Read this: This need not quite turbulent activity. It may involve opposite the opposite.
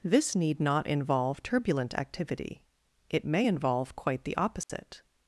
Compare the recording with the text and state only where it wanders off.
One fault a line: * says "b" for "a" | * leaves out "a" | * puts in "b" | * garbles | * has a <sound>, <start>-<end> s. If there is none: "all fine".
* says "involve" for "quite"
* says "quite" for "opposite"
* has a dropout, 4.6-4.7 s